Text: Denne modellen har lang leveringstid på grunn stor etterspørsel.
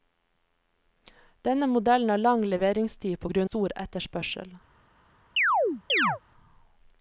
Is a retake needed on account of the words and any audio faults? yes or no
yes